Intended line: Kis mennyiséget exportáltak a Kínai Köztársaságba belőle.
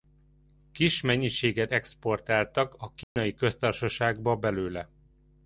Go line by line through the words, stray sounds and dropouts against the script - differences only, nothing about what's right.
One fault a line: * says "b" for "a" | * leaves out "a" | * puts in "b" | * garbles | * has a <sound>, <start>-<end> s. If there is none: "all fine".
* has a dropout, 3.0-3.2 s